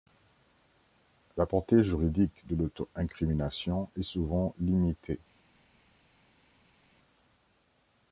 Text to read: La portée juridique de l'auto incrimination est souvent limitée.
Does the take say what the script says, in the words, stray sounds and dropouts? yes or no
yes